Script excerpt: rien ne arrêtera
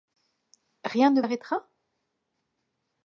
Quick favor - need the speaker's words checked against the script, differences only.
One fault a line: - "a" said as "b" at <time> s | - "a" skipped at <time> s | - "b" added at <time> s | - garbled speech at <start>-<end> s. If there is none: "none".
none